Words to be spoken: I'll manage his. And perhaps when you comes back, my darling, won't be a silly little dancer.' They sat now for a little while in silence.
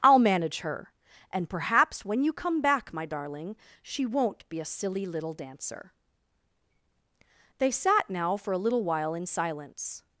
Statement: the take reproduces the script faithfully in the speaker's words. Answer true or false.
false